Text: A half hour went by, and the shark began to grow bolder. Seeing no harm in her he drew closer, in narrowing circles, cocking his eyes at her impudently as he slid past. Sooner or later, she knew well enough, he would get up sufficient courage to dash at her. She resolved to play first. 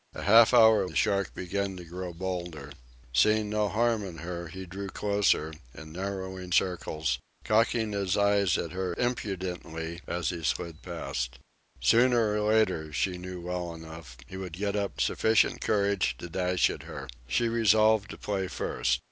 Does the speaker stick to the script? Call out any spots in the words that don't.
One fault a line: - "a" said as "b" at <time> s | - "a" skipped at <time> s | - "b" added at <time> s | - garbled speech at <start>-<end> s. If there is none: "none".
- "went by and" skipped at 0.9 s